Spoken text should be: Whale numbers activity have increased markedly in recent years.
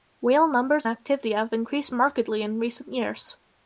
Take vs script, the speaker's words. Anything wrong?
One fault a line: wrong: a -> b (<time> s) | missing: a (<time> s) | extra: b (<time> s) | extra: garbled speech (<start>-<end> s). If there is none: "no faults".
no faults